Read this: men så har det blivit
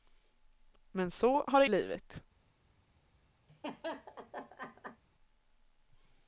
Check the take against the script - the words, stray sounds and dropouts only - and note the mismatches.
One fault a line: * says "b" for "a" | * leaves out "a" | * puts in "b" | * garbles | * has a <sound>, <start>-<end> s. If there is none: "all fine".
* has a laugh, 3.5-5.0 s